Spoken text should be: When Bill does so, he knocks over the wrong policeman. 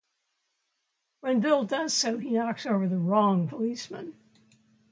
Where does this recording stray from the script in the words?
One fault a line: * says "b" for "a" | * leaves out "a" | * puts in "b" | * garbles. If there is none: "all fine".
all fine